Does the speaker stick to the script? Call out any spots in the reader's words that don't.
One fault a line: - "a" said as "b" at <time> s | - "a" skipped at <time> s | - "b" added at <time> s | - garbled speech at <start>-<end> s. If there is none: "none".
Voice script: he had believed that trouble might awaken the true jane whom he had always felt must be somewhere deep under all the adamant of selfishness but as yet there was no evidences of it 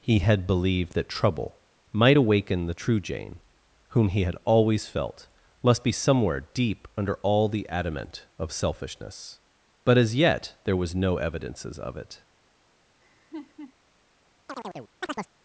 none